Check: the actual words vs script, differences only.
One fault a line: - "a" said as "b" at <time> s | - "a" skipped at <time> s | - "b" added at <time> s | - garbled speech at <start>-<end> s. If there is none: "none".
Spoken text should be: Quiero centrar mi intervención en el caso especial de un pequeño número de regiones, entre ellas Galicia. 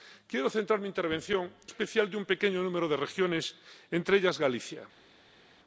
- "en el caso" skipped at 1.5 s